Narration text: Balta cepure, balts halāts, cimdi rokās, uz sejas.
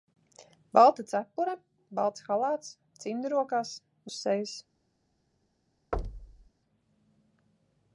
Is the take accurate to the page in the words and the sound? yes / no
no